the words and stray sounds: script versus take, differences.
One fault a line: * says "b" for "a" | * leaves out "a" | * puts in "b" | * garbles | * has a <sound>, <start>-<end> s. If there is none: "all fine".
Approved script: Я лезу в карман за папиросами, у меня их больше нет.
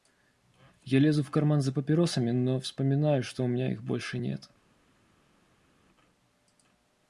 * puts in "но вспоминаю что"